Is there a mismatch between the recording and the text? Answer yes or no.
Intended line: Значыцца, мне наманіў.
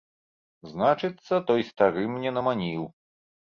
yes